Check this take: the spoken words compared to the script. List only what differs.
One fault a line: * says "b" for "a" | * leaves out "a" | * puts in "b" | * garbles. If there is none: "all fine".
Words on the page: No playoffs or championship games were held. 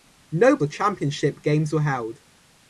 * leaves out "playoffs"